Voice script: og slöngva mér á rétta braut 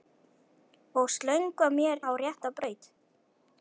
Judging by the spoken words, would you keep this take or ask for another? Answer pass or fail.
pass